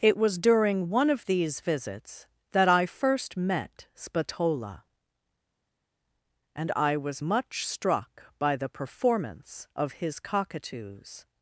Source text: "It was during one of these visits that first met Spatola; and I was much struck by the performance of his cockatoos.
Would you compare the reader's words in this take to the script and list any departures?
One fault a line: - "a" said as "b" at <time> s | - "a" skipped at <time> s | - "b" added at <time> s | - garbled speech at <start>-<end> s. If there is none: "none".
- "I" added at 2.7 s